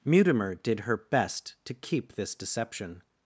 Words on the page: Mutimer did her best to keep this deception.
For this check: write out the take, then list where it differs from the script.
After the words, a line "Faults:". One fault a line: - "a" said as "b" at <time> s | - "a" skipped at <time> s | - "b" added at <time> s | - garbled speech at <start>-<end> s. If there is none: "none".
Mutimer did her best to keep this deception.
Faults:
none